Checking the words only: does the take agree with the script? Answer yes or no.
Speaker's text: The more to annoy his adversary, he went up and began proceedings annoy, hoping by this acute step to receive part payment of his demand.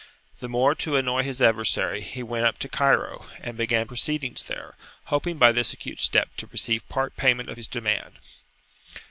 no